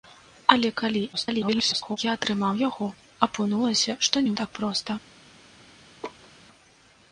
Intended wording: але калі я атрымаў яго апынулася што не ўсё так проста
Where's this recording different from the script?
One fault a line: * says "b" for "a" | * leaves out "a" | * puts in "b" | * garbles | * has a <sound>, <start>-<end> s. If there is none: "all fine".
* garbles
* leaves out "ўсё"
* has a laugh, 6.0-6.3 s